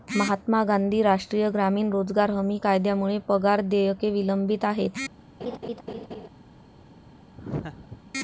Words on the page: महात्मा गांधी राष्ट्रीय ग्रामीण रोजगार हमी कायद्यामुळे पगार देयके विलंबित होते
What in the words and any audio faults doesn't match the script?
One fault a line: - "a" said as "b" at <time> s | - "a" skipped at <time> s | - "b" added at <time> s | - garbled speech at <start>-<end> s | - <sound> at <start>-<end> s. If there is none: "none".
- "होते" said as "आहेत" at 4.7 s
- laugh at 5.4-6.3 s
- laugh at 7.4-8.0 s